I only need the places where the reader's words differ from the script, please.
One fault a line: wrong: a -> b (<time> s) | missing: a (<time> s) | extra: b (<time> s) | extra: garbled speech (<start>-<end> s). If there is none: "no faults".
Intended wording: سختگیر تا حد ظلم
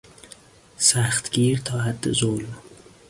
no faults